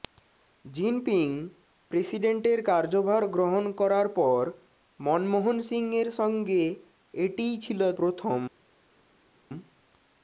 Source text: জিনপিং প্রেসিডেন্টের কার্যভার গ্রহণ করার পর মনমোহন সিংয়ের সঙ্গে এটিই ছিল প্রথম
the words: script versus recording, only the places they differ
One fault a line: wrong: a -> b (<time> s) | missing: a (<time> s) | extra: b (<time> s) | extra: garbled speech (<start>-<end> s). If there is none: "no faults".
no faults